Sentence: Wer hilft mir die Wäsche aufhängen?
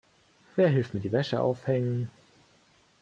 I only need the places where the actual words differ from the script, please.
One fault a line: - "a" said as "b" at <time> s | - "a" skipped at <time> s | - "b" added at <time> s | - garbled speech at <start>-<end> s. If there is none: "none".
none